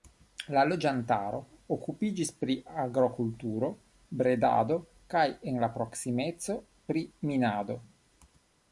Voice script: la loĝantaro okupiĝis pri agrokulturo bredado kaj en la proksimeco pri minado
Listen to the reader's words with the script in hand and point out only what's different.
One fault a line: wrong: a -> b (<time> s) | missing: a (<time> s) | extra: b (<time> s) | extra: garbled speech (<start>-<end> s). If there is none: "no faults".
no faults